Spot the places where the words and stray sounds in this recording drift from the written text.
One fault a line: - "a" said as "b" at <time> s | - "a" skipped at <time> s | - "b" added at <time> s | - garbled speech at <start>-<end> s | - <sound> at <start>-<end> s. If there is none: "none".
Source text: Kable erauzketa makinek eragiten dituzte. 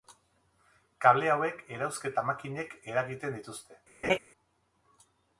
- "hauek" added at 1.3 s
- laugh at 4.0-4.2 s